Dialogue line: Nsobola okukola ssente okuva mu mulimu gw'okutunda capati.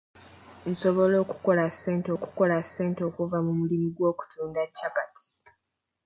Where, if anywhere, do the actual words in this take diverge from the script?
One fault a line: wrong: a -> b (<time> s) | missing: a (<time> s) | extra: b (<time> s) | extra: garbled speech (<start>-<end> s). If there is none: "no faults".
extra: okukola ssente (2.2 s)